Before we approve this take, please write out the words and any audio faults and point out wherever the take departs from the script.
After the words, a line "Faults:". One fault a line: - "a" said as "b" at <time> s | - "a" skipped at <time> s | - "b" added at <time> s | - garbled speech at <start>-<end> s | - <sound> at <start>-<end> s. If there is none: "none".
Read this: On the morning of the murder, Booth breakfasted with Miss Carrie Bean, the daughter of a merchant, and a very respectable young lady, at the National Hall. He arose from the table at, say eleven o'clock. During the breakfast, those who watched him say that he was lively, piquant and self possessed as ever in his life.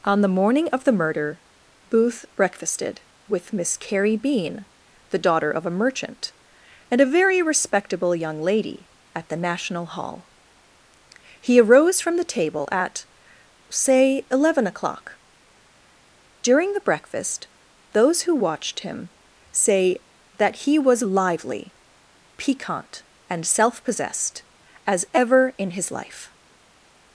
On the morning of the murder, Booth breakfasted with Miss Carrie Bean, the daughter of a merchant, and a very respectable young lady, at the National Hall. He arose from the table at, say eleven o'clock. During the breakfast, those who watched him say that he was lively, piquant and self possessed as ever in his life.
Faults:
none